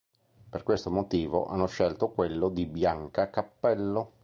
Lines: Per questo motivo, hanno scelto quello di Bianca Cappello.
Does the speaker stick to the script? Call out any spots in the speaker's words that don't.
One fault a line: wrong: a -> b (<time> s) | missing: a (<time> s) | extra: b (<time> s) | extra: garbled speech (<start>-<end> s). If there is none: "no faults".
no faults